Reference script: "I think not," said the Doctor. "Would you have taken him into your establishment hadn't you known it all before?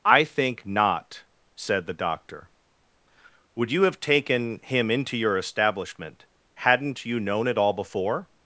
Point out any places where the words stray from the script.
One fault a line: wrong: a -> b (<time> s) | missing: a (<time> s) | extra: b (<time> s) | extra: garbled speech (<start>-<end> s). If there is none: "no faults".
no faults